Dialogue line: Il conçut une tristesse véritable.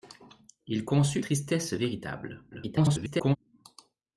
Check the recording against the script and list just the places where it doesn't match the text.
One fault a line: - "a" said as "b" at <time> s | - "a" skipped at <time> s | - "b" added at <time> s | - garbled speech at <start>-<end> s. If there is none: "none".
- "une" skipped at 1.2 s
- garbled speech at 2.5-3.4 s